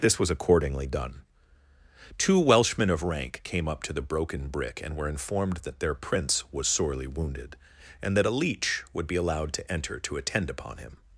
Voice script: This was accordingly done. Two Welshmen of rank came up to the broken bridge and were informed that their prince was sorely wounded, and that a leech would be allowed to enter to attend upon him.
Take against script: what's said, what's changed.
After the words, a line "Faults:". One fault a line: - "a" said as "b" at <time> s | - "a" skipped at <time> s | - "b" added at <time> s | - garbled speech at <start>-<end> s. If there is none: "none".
This was accordingly done. Two Welshmen of rank came up to the broken brick and were informed that their prince was sorely wounded, and that a leech would be allowed to enter to attend upon him.
Faults:
- "bridge" said as "brick" at 4.5 s